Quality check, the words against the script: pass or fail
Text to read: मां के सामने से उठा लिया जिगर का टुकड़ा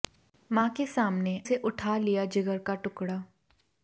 pass